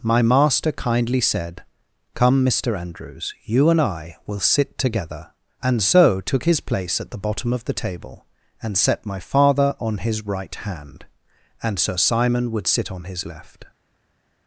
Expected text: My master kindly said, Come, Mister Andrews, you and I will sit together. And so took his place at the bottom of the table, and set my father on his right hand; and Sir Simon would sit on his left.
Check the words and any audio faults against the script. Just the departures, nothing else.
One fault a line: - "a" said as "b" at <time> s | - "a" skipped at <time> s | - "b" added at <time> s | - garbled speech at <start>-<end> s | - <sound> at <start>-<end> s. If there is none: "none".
none